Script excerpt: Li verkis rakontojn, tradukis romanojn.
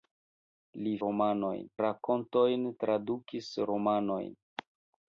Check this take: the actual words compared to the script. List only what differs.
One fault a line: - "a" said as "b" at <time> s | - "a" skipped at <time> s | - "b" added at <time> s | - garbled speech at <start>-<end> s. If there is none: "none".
- "verkis" said as "romanojn" at 1.1 s